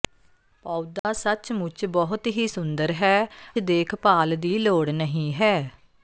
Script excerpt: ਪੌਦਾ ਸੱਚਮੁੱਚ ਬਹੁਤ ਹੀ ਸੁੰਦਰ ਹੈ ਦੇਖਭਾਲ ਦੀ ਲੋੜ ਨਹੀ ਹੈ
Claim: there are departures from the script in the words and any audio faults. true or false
true